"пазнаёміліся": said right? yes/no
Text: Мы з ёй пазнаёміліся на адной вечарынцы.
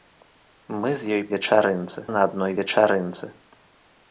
no